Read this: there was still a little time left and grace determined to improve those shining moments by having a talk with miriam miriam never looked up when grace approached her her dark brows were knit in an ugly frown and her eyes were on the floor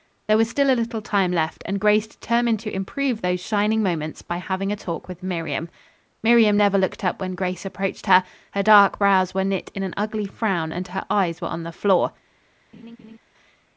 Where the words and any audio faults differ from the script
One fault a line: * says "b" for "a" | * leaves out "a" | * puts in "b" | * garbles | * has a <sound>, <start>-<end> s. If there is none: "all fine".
* has a laugh, 12.7-13.2 s